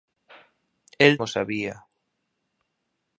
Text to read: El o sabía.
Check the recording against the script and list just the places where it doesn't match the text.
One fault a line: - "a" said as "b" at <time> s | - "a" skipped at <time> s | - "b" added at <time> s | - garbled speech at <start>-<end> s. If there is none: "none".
none